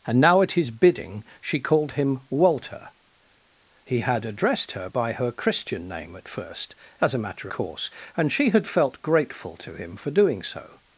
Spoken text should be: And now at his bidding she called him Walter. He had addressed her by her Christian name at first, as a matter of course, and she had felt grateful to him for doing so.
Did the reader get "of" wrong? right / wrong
wrong